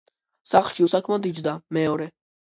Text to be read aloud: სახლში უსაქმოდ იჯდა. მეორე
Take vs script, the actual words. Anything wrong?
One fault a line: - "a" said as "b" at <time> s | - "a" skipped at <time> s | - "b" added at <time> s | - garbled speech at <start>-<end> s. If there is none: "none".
none